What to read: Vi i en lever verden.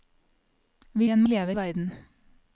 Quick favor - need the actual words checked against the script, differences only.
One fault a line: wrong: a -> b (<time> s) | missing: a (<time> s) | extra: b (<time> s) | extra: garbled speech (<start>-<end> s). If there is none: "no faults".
no faults